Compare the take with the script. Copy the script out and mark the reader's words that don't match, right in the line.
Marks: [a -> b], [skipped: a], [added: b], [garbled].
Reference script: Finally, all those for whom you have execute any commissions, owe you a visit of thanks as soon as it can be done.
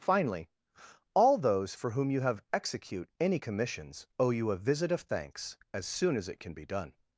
Finally, all those for whom you have execute any commissions, owe you a visit of thanks as soon as it can be done.